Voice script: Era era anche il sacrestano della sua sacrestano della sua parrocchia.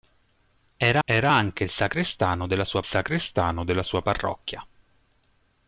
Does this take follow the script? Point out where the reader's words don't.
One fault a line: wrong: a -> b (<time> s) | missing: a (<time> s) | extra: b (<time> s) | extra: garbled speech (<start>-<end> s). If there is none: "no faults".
no faults